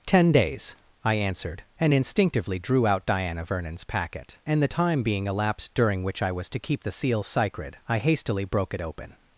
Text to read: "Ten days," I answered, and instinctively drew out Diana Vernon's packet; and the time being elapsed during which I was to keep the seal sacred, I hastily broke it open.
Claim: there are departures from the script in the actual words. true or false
false